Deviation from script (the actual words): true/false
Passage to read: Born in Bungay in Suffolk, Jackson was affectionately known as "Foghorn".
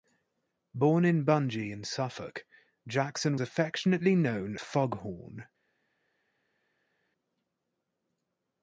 true